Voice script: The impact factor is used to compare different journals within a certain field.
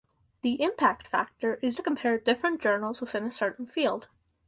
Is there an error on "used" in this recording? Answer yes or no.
yes